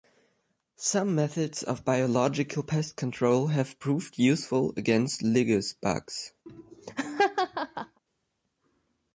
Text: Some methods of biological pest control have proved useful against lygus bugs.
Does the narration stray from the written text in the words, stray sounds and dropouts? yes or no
yes